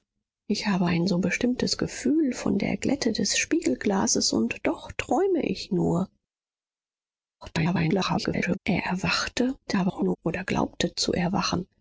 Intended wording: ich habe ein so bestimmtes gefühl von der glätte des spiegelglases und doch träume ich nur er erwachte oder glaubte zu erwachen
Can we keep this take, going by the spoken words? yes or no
no